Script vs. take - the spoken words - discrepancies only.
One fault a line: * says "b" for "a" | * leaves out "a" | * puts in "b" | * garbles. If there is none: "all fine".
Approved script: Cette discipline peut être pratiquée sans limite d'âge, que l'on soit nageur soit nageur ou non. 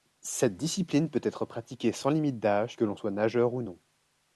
* leaves out "soit nageur"